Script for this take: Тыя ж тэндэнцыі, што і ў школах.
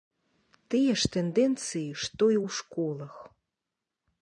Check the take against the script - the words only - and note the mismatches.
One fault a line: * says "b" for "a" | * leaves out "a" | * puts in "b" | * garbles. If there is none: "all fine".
all fine